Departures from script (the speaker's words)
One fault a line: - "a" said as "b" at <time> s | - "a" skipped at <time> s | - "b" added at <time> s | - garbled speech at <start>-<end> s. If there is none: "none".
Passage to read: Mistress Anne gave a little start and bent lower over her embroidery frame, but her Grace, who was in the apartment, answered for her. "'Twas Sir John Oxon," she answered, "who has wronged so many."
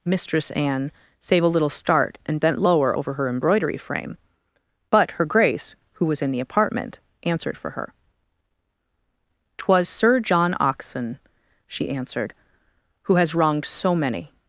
- "gave" said as "save" at 1.2 s